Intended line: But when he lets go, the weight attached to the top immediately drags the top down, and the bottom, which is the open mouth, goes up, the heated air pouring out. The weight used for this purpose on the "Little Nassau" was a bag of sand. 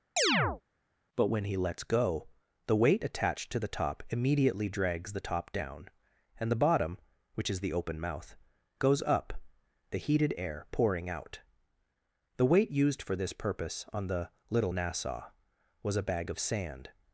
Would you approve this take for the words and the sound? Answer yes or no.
no